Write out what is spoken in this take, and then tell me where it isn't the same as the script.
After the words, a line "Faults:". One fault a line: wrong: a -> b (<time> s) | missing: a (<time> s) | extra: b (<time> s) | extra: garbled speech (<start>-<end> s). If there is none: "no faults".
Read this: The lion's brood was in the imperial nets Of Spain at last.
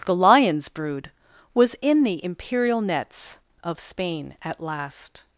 The lion's brood was in the imperial nets Of Spain at last.
Faults:
no faults